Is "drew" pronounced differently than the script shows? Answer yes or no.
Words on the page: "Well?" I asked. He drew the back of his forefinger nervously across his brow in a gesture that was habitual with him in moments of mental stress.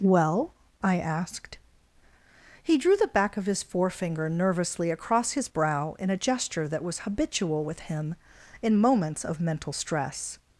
no